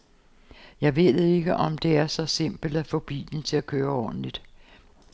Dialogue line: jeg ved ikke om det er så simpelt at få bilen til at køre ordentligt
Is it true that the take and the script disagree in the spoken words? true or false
false